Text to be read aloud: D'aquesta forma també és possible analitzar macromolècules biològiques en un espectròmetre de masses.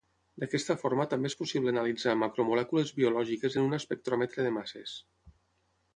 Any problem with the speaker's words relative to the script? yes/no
no